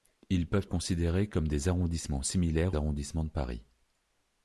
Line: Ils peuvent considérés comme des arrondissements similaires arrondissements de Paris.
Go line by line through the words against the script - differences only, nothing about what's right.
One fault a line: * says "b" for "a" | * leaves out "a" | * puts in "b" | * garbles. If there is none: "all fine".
all fine